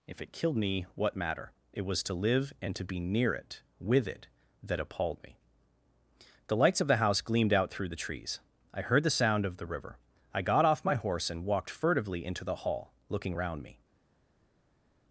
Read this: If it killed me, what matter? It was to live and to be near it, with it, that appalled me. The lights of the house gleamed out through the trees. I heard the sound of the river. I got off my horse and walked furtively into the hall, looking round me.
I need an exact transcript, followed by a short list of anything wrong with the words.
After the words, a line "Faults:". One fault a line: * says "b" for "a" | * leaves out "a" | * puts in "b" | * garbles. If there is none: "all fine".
If it killed me, what matter? It was to live and to be near it, with it, that appalled me. The lights of the house gleamed out through the trees. I heard the sound of the river. I got off my horse and walked furtively into the hall, looking round me.
Faults:
all fine